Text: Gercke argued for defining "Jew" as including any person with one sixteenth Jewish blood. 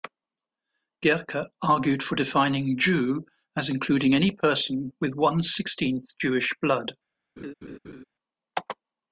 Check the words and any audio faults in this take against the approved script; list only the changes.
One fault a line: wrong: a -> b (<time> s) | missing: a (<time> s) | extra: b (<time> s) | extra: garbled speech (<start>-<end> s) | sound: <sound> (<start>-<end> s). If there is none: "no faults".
sound: laugh (7.4-8.0 s)